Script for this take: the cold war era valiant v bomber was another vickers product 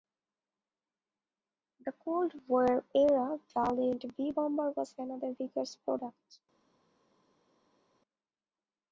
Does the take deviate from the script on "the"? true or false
false